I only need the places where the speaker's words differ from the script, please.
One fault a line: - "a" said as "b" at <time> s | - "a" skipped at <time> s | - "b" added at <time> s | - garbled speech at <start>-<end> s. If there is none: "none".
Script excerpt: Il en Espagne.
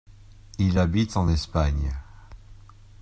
- "habite" added at 0.8 s